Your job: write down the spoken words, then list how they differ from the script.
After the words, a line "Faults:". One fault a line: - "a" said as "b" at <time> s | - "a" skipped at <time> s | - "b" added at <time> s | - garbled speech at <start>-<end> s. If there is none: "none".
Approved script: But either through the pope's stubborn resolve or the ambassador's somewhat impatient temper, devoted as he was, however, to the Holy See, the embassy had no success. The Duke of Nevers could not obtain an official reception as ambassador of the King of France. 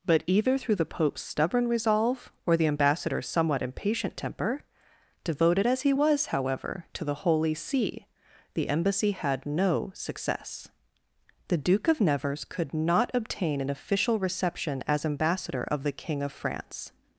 But either through the pope's stubborn resolve or the ambassador's somewhat impatient temper, devoted as he was, however, to the Holy See, the embassy had no success. The Duke of Nevers could not obtain an official reception as ambassador of the King of France.
Faults:
none